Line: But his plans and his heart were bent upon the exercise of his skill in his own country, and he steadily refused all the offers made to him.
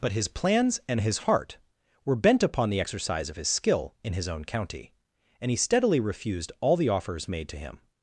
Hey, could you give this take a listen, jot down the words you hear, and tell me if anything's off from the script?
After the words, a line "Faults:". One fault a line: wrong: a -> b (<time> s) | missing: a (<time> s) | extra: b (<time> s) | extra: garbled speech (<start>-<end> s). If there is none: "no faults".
But his plans and his heart were bent upon the exercise of his skill in his own county, and he steadily refused all the offers made to him.
Faults:
wrong: country -> county (4.4 s)